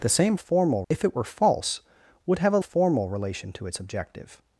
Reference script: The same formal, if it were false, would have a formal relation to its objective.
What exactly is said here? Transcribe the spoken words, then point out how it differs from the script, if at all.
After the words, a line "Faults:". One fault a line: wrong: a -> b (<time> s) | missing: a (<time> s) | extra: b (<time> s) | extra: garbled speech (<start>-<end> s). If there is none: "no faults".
The same formal, if it were false, would have a formal relation to its objective.
Faults:
no faults